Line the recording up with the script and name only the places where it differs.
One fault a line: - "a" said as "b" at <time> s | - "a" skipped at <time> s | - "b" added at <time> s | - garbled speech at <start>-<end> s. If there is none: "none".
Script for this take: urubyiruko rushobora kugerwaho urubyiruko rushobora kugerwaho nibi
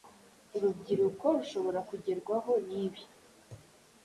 - "urubyiruko rushobora kugerwaho" skipped at 2.5 s